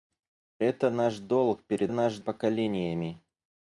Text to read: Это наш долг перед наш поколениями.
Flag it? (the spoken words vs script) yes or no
no